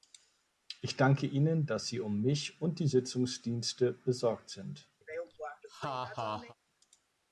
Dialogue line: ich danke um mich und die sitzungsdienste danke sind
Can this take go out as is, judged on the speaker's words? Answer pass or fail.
fail